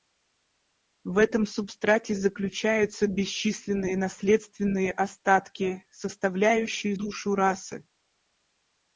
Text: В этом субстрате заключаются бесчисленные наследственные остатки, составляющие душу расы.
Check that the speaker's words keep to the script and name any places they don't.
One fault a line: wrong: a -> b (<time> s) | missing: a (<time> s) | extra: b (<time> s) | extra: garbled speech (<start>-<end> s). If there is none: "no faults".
no faults